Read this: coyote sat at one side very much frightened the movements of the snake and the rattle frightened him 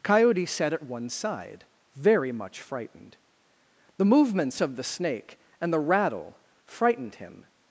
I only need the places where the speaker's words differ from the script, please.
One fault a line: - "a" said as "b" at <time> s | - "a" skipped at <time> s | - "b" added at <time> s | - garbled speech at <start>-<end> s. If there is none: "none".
none